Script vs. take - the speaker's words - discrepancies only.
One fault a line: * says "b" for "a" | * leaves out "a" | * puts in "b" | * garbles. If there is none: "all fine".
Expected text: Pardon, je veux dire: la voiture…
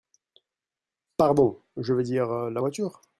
all fine